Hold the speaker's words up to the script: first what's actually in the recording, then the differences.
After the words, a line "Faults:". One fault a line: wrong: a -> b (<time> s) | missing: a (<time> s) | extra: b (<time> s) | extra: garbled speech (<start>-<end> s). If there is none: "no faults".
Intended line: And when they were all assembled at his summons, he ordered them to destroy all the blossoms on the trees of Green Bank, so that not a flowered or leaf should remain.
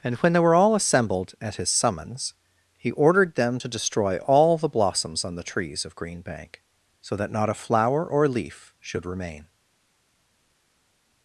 And when they were all assembled at his summons, he ordered them to destroy all the blossoms on the trees of Green Bank, so that not a flower or leaf should remain.
Faults:
wrong: flowered -> flower (7.5 s)